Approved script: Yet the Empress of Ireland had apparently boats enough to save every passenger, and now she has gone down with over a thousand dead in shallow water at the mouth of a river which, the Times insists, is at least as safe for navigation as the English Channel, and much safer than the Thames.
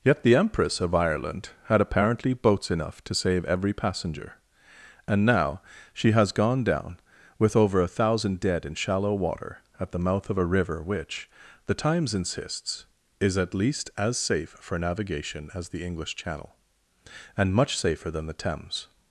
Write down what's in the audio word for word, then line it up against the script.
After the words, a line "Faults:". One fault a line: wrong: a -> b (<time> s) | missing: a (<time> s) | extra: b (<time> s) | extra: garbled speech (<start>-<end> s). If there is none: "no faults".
Yet the Empress of Ireland had apparently boats enough to save every passenger, and now she has gone down with over a thousand dead in shallow water at the mouth of a river which, the Times insists, is at least as safe for navigation as the English Channel, and much safer than the Thames.
Faults:
no faults